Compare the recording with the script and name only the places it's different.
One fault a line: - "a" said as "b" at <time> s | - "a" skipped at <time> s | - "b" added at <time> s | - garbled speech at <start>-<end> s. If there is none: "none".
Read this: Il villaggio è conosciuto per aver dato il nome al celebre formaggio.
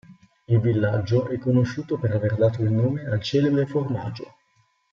none